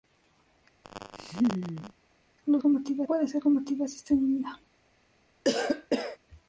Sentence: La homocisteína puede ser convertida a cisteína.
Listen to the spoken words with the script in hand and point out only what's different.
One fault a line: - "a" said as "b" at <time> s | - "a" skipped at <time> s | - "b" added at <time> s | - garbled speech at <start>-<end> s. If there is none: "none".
- "homocisteína" said as "convertida" at 2.6 s